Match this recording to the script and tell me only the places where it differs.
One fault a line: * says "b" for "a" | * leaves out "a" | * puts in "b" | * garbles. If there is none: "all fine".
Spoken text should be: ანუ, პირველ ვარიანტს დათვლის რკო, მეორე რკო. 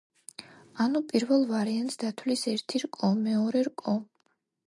* puts in "ერთი"